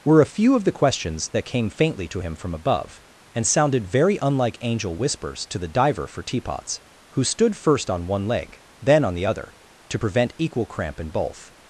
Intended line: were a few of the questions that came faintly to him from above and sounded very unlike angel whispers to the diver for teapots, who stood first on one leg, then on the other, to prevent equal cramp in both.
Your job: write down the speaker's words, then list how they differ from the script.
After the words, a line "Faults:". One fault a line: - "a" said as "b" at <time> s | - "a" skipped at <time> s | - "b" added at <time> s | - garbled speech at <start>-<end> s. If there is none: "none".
were a few of the questions that came faintly to him from above and sounded very unlike angel whispers to the diver for teapots, who stood first on one leg, then on the other, to prevent equal cramp in both.
Faults:
none